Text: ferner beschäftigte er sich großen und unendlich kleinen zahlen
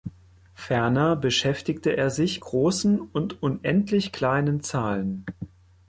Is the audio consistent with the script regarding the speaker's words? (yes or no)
yes